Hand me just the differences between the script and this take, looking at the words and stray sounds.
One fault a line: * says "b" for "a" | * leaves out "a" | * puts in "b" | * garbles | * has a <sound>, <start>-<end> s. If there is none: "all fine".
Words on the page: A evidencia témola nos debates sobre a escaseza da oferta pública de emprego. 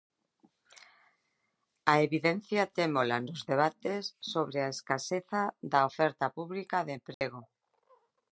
* has a dropout, 7.1-7.2 s